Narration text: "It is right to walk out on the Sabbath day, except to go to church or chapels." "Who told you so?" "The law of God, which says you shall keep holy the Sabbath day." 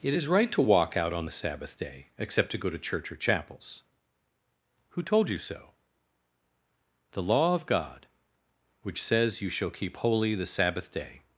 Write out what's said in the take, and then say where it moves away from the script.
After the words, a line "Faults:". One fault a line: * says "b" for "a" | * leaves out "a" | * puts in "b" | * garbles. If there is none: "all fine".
"It is right to walk out on the Sabbath day, except to go to church or chapels." "Who told you so?" "The law of God, which says you shall keep holy the Sabbath day."
Faults:
all fine